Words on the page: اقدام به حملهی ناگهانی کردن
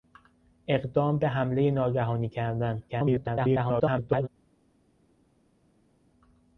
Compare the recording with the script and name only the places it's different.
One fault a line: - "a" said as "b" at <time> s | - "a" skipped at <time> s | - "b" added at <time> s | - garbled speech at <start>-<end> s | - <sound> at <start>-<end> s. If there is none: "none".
- garbled speech at 2.9-4.3 s